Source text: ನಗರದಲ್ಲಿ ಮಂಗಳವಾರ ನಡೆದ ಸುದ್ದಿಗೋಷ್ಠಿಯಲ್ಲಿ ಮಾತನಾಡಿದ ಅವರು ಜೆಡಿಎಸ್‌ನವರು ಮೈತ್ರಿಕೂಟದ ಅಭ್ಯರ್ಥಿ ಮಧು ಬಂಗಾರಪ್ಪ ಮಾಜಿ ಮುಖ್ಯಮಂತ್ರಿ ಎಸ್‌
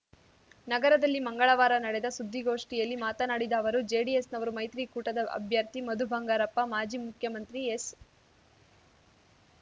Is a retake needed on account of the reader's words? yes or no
no